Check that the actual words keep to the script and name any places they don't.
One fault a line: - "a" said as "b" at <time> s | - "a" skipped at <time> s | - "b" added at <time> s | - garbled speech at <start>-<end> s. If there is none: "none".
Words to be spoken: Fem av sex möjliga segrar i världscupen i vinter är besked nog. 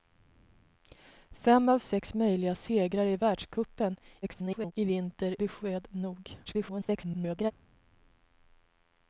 - garbled speech at 4.2-4.7 s
- "är" skipped at 5.4 s
- garbled speech at 6.4-7.5 s